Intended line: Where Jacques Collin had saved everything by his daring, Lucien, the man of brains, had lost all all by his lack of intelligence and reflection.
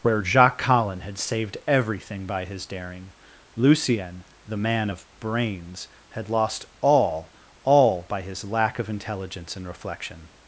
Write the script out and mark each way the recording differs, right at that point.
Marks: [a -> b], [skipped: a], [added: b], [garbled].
Where Jacques Collin had saved everything by his daring, Lucien, the man of brains, had lost all all by his lack of intelligence and reflection.